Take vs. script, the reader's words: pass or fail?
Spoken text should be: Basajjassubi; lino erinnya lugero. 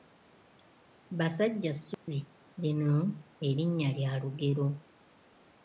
fail